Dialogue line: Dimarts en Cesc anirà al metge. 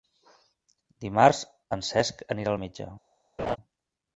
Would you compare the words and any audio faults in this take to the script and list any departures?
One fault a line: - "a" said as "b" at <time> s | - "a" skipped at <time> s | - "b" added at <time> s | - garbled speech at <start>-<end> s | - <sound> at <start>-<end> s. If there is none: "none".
- laugh at 3.4-3.6 s